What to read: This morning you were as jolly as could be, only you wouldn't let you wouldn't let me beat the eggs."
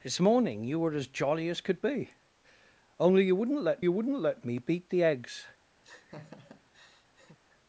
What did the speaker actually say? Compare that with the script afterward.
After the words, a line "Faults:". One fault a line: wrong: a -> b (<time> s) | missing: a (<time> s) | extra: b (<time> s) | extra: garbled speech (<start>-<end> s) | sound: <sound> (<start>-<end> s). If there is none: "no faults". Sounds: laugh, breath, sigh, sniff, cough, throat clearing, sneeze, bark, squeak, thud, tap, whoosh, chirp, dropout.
This morning you were as jolly as could be, only you wouldn't let you wouldn't let me beat the eggs."
Faults:
sound: laugh (5.8-7.4 s)